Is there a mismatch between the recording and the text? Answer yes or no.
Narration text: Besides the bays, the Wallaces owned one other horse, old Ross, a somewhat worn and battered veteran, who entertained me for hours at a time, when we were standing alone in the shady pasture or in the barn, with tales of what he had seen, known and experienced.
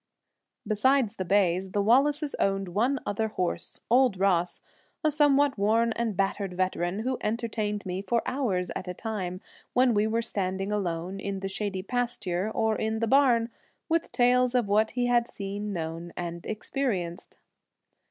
no